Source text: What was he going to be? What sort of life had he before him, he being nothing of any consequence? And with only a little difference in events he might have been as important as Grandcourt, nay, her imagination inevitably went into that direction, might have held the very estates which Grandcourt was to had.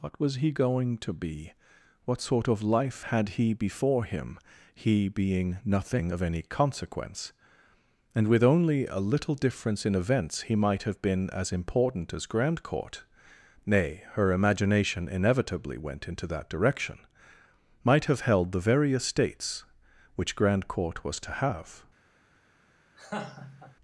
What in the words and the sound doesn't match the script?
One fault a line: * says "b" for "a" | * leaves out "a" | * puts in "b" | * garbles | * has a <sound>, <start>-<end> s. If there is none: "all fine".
* says "have" for "had"
* has a laugh, 23.0-23.8 s